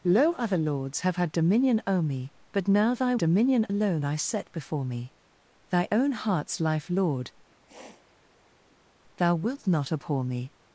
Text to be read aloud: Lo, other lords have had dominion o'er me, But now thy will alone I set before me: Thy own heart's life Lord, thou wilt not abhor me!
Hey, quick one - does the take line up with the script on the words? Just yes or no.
no